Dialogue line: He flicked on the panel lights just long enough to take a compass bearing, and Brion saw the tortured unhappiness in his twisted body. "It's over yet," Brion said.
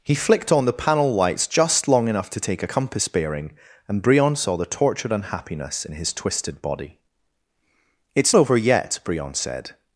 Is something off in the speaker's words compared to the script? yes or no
no